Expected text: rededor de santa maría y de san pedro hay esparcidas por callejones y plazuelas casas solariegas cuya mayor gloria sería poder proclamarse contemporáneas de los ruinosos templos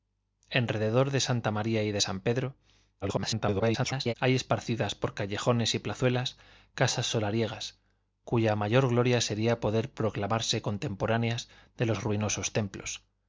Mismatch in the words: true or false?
true